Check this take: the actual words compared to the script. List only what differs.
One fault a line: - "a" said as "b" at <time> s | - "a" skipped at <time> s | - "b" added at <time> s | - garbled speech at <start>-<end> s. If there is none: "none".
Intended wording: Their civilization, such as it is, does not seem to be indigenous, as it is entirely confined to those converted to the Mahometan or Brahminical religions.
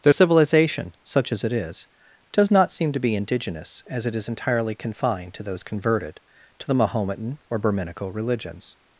none